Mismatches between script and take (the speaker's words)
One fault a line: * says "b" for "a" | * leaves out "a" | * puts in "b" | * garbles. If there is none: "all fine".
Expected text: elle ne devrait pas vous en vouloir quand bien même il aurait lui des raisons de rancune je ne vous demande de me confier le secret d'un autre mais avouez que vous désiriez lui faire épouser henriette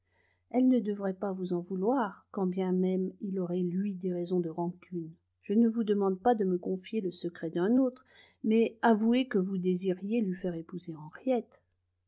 * puts in "pas"